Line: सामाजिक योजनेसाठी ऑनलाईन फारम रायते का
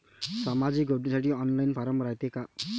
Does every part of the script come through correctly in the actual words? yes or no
yes